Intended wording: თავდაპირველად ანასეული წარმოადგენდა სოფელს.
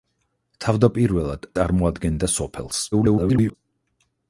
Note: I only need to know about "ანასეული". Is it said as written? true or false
false